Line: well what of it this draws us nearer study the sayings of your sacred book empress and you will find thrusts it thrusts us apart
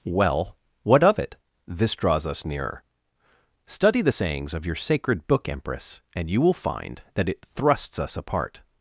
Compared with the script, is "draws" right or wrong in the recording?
right